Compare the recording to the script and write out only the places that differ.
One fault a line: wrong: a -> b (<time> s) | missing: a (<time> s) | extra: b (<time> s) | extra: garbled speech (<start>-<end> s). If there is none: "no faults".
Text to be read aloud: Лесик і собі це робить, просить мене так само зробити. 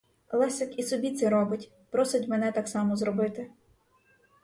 no faults